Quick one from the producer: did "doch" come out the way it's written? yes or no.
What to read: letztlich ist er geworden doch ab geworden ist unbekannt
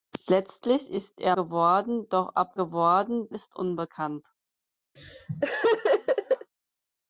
yes